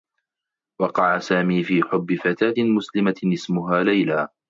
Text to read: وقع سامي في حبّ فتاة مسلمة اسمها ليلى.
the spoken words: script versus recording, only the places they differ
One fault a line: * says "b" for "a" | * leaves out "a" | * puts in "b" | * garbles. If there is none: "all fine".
all fine